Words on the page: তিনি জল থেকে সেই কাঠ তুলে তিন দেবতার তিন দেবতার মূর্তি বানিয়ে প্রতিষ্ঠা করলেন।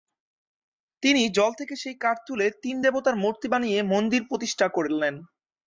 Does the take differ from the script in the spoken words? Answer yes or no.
yes